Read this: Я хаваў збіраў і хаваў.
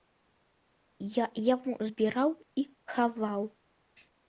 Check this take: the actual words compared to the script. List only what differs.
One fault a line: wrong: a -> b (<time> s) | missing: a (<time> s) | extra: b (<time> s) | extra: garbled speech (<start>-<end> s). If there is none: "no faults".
wrong: хаваў -> яму (1.5 s)